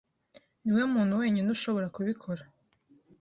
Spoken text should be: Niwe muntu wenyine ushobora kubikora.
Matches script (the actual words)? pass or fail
pass